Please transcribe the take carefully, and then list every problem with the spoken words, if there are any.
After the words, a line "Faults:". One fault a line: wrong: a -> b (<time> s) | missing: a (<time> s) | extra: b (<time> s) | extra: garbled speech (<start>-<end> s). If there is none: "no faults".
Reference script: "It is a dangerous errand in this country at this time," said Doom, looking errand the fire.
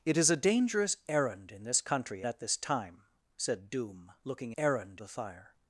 "It is a dangerous errand in this country at this time," said Doom, looking errand the fire.
Faults:
no faults